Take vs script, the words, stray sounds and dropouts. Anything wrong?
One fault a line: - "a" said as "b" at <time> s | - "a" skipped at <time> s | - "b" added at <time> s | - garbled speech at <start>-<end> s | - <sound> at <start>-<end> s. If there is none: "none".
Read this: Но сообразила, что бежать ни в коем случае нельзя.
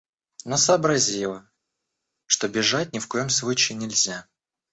none